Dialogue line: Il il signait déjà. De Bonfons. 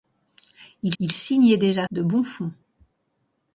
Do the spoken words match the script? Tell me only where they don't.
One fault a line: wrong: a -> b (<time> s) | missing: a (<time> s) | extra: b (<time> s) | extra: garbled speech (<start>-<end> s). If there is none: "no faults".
no faults